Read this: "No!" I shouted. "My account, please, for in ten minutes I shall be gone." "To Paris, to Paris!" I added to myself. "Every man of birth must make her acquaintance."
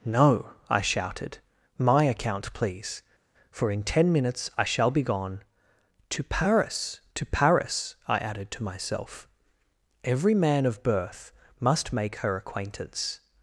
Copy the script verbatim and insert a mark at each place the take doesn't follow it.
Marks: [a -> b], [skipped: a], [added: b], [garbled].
"No!" I shouted. "My account, please, for in ten minutes I shall be gone." "To Paris, to Paris!" I added to myself. "Every man of birth must make her acquaintance."